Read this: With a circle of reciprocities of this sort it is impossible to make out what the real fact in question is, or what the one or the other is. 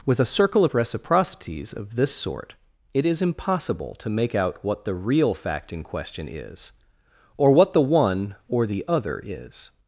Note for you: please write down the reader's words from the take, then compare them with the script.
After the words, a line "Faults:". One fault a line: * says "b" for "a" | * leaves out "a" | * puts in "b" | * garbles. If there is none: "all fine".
With a circle of reciprocities of this sort it is impossible to make out what the real fact in question is, or what the one or the other is.
Faults:
all fine